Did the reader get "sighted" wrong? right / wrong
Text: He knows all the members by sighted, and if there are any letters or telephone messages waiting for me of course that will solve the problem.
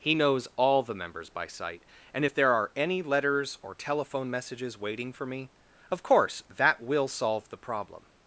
wrong